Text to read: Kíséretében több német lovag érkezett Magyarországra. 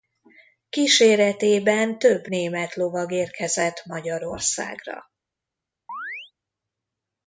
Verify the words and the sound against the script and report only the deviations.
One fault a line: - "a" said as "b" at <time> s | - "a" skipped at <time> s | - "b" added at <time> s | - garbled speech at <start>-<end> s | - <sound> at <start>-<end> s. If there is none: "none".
- chirp at 5.9-6.3 s